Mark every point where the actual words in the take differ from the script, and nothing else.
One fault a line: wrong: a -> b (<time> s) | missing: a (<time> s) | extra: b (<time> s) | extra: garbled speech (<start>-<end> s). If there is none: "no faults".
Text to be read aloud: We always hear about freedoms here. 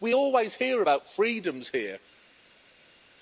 no faults